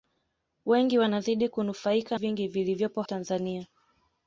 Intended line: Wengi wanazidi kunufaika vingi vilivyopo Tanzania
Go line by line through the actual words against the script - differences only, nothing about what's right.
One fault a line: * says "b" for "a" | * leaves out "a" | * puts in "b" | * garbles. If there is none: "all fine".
all fine